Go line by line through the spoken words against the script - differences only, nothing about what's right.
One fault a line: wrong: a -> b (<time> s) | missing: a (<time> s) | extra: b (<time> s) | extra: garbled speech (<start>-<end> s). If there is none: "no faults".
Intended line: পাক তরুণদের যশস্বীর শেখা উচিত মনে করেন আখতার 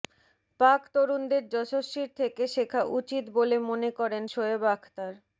extra: থেকে (2.2 s)
extra: বলে (3.4 s)
extra: শোয়েব (4.2 s)